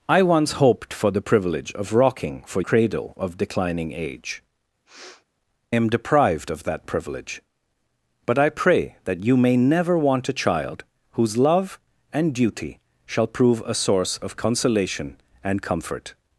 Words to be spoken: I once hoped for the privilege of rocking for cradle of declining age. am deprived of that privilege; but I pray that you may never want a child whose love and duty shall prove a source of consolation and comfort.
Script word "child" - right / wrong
right